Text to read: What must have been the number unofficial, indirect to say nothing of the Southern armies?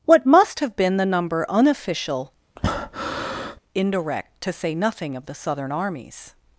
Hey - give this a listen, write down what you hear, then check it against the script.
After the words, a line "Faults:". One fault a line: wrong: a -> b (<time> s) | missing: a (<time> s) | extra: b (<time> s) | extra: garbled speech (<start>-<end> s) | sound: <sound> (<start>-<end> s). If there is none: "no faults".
What must have been the number unofficial, indirect to say nothing of the Southern armies?
Faults:
sound: breath (2.6-3.6 s)